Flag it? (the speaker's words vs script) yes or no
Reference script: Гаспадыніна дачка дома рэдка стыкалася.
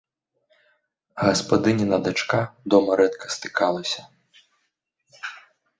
no